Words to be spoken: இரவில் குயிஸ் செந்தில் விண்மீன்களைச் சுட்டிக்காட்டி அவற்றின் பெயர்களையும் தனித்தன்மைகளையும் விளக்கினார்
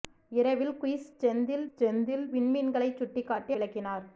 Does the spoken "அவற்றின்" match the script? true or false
false